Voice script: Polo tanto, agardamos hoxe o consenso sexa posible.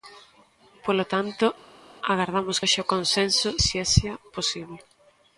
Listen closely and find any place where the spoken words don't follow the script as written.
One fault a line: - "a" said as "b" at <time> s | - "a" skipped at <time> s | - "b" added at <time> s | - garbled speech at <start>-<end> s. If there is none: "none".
none